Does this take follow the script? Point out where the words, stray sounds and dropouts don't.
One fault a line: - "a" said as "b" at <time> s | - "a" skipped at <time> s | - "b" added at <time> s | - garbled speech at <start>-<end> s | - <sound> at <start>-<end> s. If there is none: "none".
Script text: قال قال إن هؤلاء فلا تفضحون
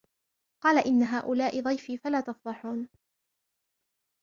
- "قال" skipped at 0.9 s
- "ضيفي" added at 1.6 s